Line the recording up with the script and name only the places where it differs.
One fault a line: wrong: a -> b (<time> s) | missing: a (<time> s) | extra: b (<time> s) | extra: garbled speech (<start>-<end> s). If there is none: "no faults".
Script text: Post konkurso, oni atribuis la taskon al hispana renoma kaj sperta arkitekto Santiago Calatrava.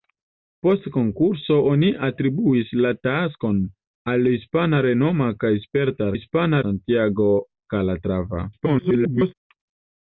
wrong: arkitekto -> hispana (6.1 s)
extra: garbled speech (8.5-9.3 s)